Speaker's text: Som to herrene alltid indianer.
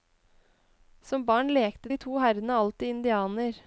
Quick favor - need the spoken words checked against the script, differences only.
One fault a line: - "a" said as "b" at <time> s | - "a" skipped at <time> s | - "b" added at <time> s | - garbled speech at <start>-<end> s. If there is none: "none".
- "barn lekte de" added at 1.2 s